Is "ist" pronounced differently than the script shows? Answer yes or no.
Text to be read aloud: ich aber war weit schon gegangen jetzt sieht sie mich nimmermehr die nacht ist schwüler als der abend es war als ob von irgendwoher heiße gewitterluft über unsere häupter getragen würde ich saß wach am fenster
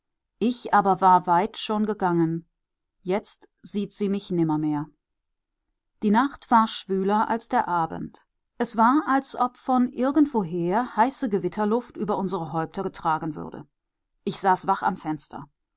yes